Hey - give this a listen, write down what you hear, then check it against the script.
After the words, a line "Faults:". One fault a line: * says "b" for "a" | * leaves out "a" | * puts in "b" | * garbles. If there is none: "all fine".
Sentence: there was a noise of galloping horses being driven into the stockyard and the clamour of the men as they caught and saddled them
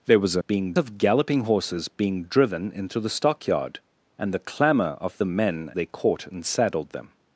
there was a being of galloping horses being driven into the stockyard and the clamour of the men they caught and saddled them
Faults:
* says "being" for "noise"
* leaves out "as"